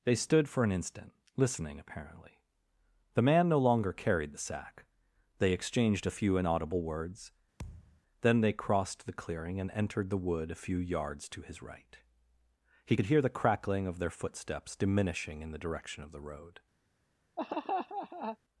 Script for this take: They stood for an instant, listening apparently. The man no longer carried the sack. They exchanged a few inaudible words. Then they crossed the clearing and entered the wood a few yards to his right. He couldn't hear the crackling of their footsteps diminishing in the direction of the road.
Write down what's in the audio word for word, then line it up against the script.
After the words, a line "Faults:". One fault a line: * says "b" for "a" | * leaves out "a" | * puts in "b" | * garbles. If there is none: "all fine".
They stood for an instant, listening apparently. The man no longer carried the sack. They exchanged a few inaudible words. Then they crossed the clearing and entered the wood a few yards to his right. He could hear the crackling of their footsteps diminishing in the direction of the road.
Faults:
* says "could" for "couldn't"